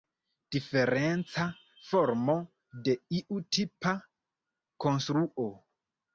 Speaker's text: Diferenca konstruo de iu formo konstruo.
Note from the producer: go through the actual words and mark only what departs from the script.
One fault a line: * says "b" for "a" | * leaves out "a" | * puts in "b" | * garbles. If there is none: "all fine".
* says "formo" for "konstruo"
* says "tipa" for "formo"